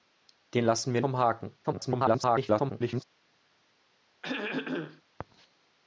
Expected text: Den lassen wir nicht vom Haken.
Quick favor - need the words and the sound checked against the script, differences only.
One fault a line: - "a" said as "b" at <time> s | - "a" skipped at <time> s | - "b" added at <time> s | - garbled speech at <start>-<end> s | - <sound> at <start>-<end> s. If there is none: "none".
- "nicht" skipped at 1.0 s
- garbled speech at 1.6-3.0 s
- throat clearing at 4.2-5.0 s